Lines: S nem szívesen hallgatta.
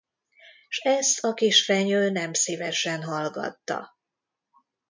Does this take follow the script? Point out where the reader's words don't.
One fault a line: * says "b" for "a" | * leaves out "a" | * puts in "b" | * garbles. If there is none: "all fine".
* puts in "ezt a kisfenyő"